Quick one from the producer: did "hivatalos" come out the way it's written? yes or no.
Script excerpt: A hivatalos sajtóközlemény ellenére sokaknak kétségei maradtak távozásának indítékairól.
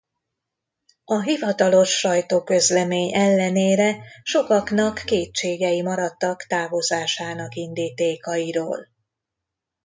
yes